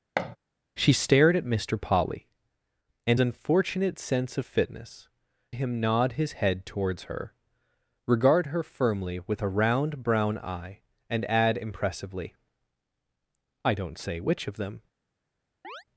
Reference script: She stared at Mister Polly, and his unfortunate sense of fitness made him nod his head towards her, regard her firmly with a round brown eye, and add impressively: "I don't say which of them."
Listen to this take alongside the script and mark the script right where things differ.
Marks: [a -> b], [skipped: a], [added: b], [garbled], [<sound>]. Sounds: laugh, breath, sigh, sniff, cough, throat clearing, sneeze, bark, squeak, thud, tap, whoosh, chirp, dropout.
[thud] She stared at Mister Polly, and [skipped: his] unfortunate sense of fitness [skipped: made] him nod his head towards her, regard her firmly with a round brown eye, and add impressively: "I don't say which of them." [chirp]